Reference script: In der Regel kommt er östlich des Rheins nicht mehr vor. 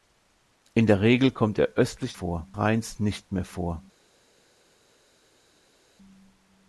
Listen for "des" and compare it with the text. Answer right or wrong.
wrong